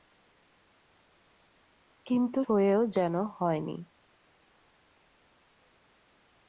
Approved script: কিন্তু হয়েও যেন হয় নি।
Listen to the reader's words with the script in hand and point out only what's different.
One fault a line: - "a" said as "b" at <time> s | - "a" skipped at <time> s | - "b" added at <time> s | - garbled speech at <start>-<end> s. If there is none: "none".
none